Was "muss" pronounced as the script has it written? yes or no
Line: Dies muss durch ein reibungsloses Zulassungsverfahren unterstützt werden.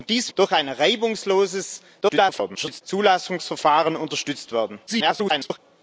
no